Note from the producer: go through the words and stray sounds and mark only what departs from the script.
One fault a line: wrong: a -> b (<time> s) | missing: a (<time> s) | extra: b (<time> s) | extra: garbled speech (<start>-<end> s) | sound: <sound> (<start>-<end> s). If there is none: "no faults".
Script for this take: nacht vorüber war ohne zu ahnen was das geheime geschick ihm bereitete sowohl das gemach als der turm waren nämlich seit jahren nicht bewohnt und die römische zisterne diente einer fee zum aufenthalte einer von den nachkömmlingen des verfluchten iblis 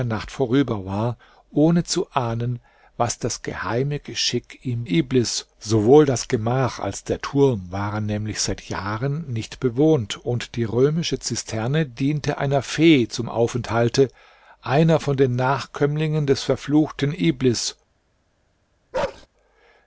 wrong: bereitete -> iblis (4.8 s)
sound: bark (18.9-19.3 s)